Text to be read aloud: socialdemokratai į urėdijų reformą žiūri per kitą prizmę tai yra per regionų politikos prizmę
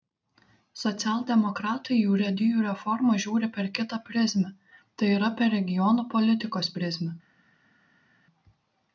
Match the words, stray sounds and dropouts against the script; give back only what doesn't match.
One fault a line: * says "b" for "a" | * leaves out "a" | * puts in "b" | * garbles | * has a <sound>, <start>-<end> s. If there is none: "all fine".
all fine